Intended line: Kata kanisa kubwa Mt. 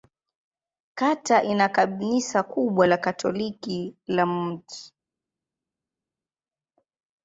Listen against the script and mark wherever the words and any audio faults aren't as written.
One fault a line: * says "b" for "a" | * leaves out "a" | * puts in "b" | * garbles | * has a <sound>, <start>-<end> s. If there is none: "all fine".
* puts in "ina"
* puts in "la Katoliki la"